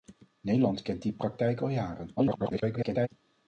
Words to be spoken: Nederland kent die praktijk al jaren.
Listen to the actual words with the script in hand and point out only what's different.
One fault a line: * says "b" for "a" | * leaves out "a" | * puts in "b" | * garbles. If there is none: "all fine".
* garbles